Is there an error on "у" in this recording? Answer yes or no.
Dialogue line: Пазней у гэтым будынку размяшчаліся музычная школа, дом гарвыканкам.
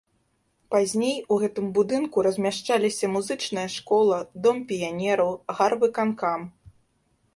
no